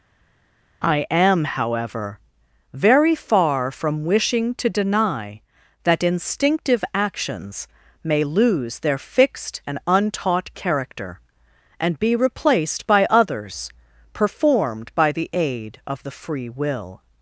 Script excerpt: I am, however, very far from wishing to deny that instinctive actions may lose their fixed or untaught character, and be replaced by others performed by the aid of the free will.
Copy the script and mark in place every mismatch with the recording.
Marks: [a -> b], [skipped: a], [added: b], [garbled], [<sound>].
I am, however, very far from wishing to deny that instinctive actions may lose their fixed [or -> and] untaught character, and be replaced by others performed by the aid of the free will.